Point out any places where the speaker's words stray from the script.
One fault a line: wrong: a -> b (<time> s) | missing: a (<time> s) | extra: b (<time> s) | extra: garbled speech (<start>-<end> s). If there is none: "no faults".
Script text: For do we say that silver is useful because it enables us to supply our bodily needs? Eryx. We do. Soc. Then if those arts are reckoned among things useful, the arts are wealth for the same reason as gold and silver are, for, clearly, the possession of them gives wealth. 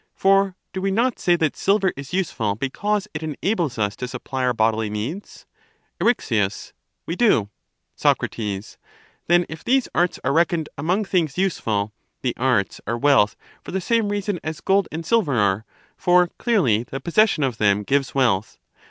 extra: not (0.9 s)
wrong: those -> these (9.6 s)